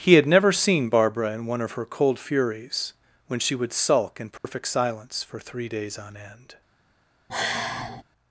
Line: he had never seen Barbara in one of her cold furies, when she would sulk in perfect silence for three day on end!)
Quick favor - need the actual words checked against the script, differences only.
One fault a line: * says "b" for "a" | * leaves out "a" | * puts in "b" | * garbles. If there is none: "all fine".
* says "days" for "day"